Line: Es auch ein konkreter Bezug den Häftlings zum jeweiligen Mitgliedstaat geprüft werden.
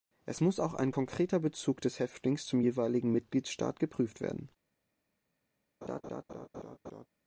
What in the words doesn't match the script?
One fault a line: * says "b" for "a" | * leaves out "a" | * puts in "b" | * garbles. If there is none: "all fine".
* puts in "muss"
* says "des" for "den"